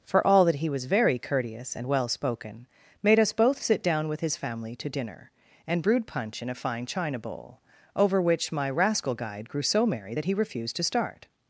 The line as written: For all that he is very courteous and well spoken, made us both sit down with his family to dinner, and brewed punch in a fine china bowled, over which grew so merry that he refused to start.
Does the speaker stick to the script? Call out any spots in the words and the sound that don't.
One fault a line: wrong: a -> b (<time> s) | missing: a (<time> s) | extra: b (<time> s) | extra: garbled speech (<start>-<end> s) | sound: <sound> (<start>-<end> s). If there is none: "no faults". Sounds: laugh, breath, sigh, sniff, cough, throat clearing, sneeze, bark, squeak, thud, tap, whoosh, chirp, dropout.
wrong: is -> was (0.7 s)
wrong: bowled -> bowl (7.2 s)
extra: my rascal guide (8.5 s)